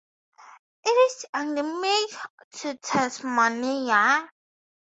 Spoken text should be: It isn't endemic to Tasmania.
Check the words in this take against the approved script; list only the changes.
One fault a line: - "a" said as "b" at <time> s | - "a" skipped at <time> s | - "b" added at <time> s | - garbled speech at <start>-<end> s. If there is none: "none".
- "isn't" said as "is" at 0.9 s